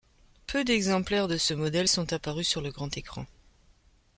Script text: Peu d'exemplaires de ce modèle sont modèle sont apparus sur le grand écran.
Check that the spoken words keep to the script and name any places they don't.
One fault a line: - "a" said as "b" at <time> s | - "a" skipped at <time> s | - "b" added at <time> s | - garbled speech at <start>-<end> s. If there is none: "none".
- "modèle sont" skipped at 2.1 s